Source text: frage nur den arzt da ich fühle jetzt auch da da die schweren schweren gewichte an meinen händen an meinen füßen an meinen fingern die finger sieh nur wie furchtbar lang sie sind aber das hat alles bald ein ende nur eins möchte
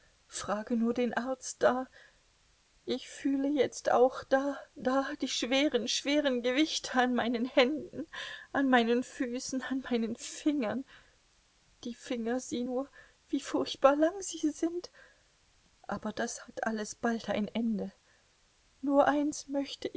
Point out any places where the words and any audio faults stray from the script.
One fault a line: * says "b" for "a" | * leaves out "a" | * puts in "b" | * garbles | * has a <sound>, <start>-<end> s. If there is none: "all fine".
all fine